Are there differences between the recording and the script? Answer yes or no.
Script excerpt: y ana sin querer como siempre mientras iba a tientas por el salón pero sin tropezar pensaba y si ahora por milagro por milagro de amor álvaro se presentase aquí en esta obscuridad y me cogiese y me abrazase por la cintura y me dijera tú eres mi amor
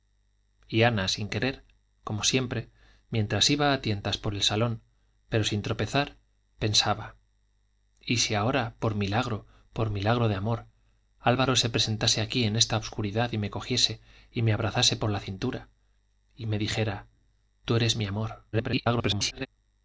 yes